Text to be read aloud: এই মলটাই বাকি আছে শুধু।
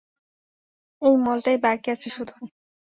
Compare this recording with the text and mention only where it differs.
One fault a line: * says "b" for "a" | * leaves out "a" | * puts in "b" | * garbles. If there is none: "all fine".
all fine